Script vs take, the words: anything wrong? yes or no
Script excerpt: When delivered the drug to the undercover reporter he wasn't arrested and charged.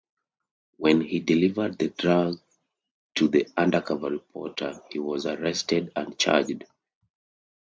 yes